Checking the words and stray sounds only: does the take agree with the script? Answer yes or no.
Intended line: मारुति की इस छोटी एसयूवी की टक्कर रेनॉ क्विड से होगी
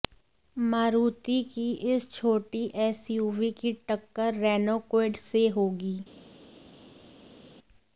yes